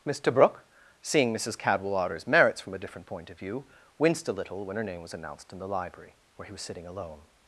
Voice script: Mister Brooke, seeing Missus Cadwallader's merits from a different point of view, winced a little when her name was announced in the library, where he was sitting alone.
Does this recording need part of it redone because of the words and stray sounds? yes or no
no